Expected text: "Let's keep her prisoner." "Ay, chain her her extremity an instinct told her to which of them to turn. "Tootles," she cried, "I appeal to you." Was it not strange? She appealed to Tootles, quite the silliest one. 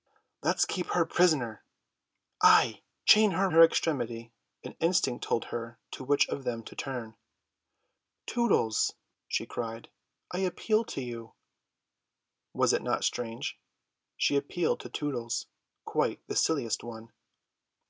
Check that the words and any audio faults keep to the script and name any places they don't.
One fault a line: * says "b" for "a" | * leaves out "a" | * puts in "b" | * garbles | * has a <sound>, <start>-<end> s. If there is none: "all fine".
all fine